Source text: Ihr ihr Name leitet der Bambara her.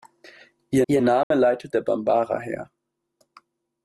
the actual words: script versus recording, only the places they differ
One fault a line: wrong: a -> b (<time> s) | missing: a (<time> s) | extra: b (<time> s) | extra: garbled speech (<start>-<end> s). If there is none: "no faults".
no faults